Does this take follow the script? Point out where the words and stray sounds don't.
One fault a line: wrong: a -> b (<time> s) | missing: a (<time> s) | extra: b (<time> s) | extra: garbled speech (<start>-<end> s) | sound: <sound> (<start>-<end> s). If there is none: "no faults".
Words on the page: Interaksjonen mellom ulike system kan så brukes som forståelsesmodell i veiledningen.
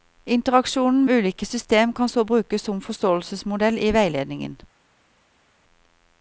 missing: mellom (1.1 s)